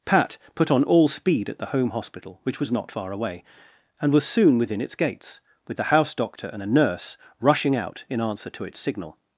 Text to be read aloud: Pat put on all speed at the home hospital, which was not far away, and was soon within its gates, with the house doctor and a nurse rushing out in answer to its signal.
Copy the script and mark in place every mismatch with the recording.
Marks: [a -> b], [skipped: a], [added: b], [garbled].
Pat put on all speed at the home hospital, which was not far away, and was soon within its gates, with the house doctor and a nurse rushing out in answer to its signal.